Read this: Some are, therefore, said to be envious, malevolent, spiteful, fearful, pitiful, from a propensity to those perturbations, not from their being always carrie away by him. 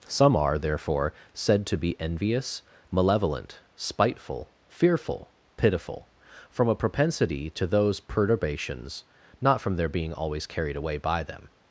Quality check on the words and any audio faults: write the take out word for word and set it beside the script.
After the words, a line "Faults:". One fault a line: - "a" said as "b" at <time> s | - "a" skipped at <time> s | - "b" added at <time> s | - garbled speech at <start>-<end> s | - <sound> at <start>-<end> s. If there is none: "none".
Some are, therefore, said to be envious, malevolent, spiteful, fearful, pitiful, from a propensity to those perturbations, not from their being always carried away by them.
Faults:
- "carrie" said as "carried" at 10.5 s
- "him" said as "them" at 11.2 s